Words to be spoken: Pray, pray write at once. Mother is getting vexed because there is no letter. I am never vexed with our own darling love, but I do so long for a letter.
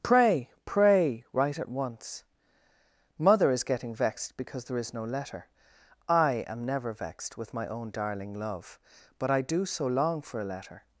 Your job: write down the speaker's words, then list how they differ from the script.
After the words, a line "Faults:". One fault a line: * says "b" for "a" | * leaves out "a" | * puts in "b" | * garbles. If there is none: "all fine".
Pray, pray write at once. Mother is getting vexed because there is no letter. I am never vexed with my own darling love, but I do so long for a letter.
Faults:
* says "my" for "our"